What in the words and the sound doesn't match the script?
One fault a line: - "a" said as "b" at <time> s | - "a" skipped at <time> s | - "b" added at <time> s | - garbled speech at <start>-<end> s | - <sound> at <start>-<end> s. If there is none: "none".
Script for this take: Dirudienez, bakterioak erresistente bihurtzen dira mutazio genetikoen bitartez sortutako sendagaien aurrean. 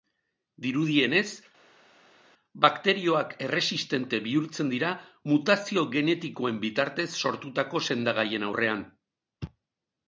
none